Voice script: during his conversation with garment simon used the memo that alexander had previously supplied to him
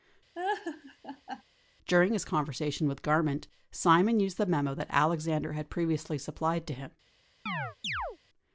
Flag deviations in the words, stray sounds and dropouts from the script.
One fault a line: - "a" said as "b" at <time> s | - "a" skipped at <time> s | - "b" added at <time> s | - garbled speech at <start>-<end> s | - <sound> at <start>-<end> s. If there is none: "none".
- laugh at 0.3-1.4 s
- chirp at 7.5-8.2 s